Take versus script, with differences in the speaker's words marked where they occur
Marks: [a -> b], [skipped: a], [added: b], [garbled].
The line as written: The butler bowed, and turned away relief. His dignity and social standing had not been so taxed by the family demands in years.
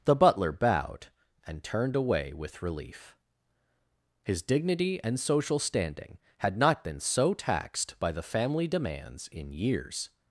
The butler bowed, and turned away [added: with] relief. His dignity and social standing had not been so taxed by the family demands in years.